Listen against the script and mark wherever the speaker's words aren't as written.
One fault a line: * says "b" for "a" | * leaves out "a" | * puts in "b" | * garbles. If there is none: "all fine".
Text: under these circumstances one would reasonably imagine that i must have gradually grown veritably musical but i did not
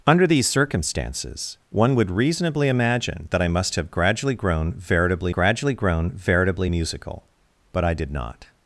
* puts in "gradually grown veritably"